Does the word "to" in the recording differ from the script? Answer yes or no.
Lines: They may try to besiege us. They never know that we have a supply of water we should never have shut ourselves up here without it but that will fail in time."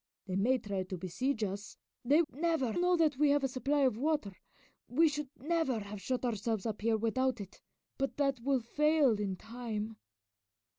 no